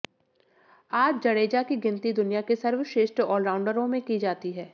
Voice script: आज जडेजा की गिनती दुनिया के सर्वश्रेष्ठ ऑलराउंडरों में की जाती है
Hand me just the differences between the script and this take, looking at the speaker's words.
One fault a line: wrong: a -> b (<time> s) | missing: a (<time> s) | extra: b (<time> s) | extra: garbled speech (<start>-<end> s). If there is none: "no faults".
no faults